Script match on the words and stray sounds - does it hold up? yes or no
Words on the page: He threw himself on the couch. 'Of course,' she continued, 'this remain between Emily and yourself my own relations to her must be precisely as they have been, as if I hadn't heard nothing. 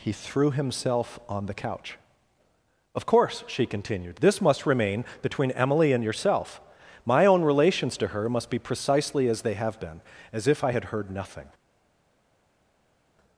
no